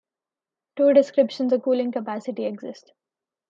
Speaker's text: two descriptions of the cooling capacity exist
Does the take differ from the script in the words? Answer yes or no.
yes